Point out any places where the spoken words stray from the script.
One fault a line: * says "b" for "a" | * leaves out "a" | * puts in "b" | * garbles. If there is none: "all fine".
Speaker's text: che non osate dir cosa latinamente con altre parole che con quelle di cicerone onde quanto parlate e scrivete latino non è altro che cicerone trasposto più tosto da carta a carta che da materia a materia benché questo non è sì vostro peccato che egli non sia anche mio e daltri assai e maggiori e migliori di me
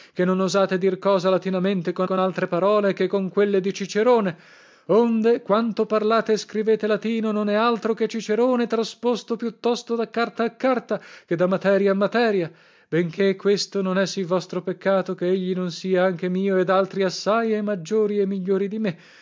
* puts in "con"